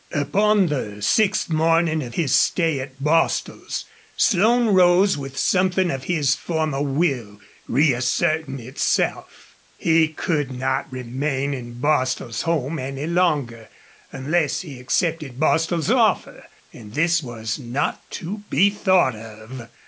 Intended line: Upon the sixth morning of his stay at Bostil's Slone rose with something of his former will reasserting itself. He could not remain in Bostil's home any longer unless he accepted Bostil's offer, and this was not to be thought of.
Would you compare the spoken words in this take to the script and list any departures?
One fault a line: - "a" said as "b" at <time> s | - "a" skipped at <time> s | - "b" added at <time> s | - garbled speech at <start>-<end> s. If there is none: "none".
none